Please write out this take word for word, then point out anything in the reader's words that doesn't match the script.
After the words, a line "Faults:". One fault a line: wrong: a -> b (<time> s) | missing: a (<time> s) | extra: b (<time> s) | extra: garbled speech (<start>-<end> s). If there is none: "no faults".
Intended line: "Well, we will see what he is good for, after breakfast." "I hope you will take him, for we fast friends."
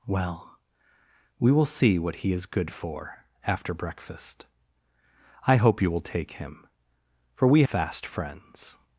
"Well, we will see what he is good for, after breakfast." "I hope you will take him, for we fast friends."
Faults:
no faults